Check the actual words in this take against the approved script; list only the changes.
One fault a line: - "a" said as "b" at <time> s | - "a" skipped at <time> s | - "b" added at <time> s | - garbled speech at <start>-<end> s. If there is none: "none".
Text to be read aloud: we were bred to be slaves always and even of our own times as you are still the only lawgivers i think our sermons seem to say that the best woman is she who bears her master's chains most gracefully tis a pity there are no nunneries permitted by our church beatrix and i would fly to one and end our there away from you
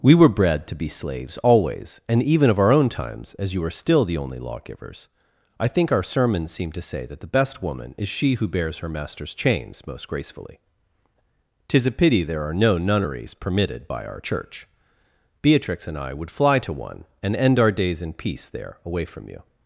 - "days in peace" added at 17.7 s